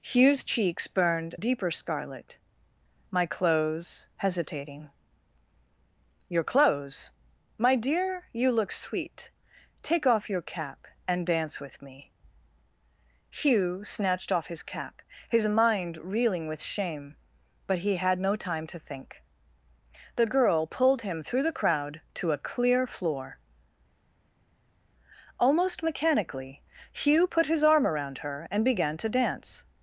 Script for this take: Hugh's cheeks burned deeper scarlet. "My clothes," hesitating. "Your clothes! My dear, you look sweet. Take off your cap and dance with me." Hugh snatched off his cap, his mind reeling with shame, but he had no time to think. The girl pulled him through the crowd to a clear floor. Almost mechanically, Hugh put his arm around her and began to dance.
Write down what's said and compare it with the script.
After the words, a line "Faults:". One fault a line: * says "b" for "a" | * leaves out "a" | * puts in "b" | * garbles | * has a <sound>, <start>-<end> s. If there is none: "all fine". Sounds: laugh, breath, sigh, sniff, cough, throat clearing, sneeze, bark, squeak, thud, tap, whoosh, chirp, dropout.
Hugh's cheeks burned deeper scarlet. "My clothes," hesitating. "Your clothes! My dear, you look sweet. Take off your cap and dance with me." Hugh snatched off his cap, his mind reeling with shame, but he had no time to think. The girl pulled him through the crowd to a clear floor. Almost mechanically, Hugh put his arm around her and began to dance.
Faults:
all fine